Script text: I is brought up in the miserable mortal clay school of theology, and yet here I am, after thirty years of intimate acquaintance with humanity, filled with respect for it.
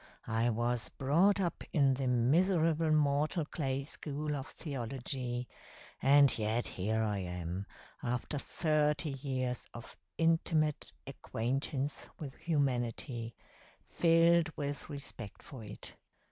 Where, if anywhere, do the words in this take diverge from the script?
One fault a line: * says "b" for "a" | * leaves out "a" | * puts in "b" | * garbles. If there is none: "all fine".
* says "was" for "is"